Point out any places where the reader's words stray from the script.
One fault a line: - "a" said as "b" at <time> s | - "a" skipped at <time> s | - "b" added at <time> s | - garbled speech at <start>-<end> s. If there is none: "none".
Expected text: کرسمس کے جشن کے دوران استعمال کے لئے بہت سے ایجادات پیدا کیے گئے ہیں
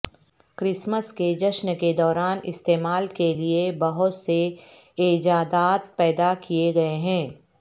none